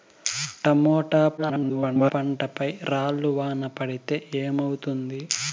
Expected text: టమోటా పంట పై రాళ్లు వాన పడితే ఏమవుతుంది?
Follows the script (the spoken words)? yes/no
no